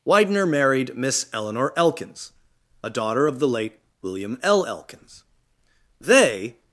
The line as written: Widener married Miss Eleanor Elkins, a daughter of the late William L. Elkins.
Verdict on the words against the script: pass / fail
fail